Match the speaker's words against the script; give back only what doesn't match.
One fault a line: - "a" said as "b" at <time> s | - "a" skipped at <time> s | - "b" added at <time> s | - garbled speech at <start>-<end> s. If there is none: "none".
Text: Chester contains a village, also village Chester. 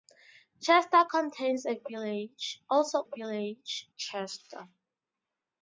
none